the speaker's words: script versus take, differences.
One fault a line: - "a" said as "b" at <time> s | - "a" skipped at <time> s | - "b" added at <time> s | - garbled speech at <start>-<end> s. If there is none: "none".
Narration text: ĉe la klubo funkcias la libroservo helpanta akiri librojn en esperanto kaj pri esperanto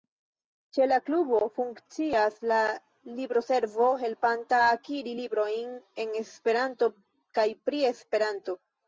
none